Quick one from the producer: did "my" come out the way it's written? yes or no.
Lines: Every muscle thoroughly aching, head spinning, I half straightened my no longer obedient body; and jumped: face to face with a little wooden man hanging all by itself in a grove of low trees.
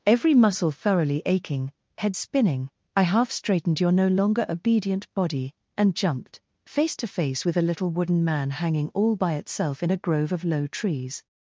no